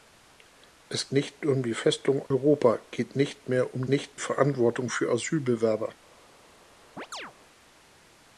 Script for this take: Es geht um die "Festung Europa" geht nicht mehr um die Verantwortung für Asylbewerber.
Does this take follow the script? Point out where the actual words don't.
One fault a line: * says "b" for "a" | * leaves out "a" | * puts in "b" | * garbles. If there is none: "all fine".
* says "nicht" for "geht"
* says "nicht" for "die"